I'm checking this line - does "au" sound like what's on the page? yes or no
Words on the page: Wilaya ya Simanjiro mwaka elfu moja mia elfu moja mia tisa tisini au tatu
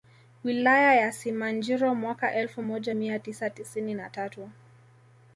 no